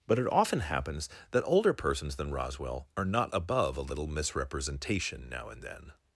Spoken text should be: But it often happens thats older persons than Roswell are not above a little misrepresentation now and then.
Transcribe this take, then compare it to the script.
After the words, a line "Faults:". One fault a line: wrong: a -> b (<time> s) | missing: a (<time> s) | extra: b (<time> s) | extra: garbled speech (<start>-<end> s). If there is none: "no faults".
But it often happens that older persons than Roswell are not above a little misrepresentation now and then.
Faults:
wrong: thats -> that (1.3 s)